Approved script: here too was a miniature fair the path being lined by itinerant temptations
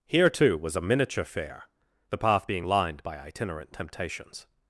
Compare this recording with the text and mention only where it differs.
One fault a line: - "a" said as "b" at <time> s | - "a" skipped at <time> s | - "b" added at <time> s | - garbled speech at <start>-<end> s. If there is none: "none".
none